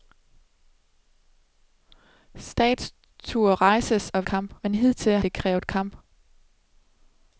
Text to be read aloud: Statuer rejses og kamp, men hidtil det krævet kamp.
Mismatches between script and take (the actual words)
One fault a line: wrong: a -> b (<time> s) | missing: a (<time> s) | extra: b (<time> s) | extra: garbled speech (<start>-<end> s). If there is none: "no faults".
no faults